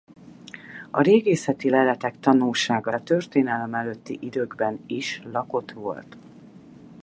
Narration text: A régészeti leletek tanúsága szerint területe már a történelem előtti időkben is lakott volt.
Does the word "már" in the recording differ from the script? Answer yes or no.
yes